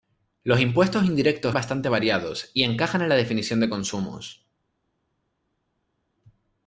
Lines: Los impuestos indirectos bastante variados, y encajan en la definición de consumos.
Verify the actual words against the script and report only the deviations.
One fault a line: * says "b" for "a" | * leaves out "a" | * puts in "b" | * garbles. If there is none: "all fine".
all fine